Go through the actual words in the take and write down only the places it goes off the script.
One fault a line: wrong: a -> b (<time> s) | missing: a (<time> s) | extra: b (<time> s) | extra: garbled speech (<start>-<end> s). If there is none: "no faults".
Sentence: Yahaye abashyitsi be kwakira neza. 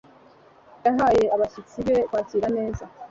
no faults